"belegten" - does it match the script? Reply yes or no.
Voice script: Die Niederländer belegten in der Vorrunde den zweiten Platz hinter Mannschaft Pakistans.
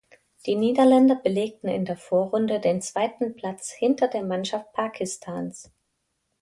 yes